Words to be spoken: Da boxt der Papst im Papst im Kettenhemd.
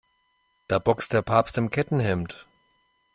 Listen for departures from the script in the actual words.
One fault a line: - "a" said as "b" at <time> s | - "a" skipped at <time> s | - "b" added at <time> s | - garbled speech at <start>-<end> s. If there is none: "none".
- "Papst im" skipped at 1.7 s